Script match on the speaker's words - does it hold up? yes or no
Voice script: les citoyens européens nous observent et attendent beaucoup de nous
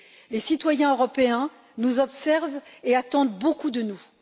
yes